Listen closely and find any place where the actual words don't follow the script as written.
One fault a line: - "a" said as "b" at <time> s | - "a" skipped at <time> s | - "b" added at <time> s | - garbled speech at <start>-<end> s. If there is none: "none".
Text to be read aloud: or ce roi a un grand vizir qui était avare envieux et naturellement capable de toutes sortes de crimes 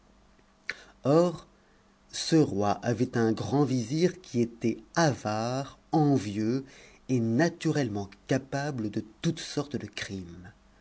- "a" said as "avait" at 2.8 s